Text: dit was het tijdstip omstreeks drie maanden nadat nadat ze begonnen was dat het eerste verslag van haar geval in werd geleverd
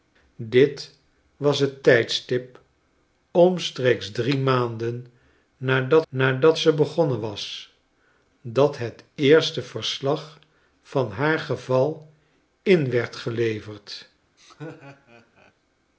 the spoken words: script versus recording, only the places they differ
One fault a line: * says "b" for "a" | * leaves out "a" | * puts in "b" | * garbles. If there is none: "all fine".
all fine